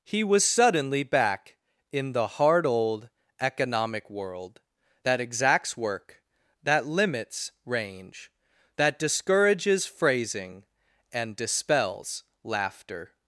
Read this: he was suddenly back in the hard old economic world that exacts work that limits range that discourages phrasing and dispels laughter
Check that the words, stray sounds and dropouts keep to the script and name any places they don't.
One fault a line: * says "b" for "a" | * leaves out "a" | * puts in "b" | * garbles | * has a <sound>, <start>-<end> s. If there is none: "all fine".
all fine